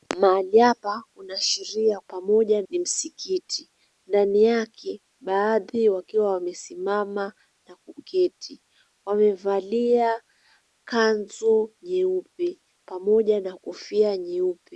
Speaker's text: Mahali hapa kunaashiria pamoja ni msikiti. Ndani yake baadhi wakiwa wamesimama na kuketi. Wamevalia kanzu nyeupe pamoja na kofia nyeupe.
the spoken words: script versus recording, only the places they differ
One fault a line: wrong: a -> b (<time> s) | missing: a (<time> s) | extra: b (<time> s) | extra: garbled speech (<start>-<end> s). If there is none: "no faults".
no faults